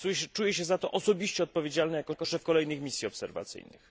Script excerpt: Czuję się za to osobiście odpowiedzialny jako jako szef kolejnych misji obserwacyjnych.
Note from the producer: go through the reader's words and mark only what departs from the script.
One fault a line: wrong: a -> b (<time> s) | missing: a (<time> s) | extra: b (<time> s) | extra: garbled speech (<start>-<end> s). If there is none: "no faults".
no faults